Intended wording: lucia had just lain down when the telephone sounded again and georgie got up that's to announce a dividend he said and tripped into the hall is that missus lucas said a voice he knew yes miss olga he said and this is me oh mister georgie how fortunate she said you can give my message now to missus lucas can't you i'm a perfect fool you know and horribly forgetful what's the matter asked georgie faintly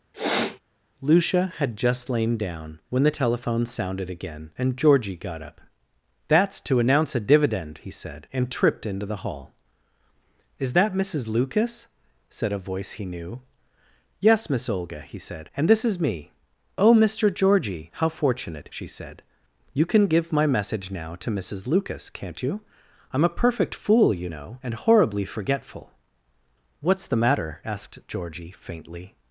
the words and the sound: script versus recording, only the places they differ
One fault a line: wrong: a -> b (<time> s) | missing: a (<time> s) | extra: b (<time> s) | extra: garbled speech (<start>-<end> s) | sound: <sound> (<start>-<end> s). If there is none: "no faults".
sound: sniff (0.1-0.6 s)